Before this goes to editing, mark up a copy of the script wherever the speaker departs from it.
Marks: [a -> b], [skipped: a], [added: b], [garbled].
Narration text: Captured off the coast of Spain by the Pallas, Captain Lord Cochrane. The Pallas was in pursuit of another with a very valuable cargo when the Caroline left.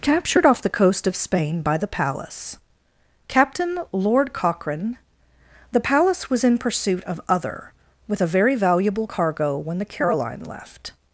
Captured off the coast of Spain by the Pallas, Captain Lord Cochrane. The Pallas was in pursuit of [another -> other] with a very valuable cargo when the Caroline left.